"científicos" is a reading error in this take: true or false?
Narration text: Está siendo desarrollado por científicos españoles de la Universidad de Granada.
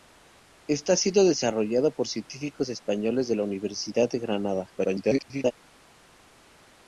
false